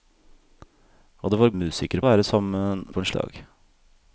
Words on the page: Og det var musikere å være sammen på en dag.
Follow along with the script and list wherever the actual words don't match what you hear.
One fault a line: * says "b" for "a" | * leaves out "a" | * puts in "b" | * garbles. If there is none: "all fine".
all fine